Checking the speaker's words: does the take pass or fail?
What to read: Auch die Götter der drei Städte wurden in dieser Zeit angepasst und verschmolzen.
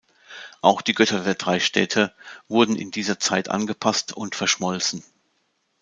pass